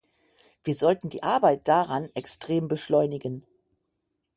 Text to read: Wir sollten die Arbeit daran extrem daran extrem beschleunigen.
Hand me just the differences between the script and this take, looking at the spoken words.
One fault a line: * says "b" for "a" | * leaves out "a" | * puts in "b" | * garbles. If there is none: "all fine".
* leaves out "daran extrem"